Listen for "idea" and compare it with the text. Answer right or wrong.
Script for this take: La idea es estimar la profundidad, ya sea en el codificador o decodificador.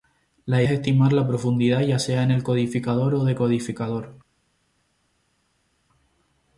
wrong